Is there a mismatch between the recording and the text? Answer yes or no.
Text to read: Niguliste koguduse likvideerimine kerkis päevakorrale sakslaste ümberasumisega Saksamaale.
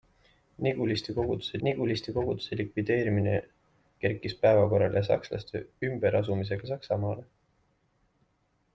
yes